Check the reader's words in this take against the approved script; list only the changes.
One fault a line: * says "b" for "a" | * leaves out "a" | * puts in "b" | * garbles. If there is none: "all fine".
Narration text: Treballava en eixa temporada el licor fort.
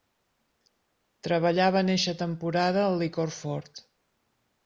all fine